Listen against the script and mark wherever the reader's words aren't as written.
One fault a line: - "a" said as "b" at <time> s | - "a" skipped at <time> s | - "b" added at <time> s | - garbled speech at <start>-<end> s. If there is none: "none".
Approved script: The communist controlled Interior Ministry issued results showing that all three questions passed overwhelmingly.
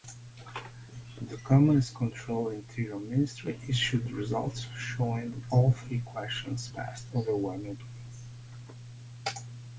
none